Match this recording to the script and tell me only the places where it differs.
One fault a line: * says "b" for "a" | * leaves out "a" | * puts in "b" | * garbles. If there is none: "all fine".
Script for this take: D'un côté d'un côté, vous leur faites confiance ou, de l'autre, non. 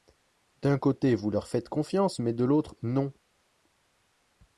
* leaves out "d'un côté"
* says "mais" for "ou"